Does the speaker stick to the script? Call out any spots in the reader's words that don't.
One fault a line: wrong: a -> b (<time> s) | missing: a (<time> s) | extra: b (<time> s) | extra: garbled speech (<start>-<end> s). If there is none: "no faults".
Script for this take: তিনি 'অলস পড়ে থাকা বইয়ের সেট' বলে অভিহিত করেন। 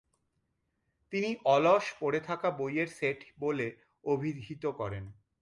no faults